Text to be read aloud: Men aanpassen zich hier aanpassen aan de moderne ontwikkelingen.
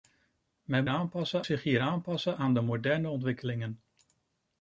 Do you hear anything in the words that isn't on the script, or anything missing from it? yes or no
no